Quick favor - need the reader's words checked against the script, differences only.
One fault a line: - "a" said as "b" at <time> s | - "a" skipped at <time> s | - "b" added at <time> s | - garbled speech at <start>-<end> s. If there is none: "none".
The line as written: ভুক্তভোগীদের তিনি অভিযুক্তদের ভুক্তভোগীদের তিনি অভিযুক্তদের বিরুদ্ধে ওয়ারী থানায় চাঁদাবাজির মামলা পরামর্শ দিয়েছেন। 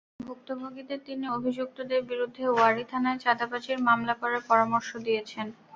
- "ভুক্তভোগীদের তিনি অভিযুক্তদের" skipped at 2.0 s
- "করার" added at 4.2 s